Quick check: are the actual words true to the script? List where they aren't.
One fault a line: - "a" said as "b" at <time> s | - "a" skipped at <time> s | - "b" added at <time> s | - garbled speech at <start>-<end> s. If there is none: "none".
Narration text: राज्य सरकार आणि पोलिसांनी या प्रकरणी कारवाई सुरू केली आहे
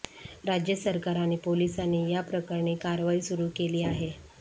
none